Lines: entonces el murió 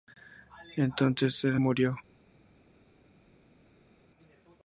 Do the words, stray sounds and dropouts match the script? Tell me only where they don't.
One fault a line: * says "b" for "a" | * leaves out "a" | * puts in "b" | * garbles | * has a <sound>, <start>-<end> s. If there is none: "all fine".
all fine